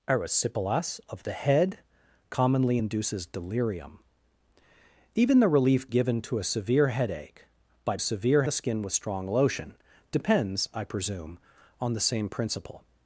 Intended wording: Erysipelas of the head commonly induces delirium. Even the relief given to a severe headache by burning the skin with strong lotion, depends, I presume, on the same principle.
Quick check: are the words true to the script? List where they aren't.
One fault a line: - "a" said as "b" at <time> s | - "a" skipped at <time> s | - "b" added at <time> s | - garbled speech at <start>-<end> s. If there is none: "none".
- "burning" said as "severe" at 8.0 s